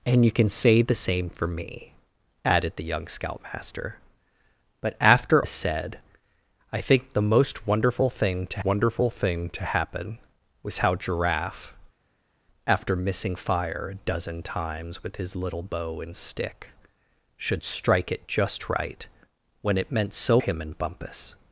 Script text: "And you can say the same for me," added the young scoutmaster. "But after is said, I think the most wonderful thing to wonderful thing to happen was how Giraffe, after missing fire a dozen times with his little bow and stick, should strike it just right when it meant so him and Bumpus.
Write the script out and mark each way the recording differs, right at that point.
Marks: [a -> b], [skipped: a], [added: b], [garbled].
"And you can say the same for me," added the young scoutmaster. "But after is said, I think the most wonderful thing to wonderful thing to happen was how Giraffe, after missing fire a dozen times with his little bow and stick, should strike it just right when it meant so him and Bumpus.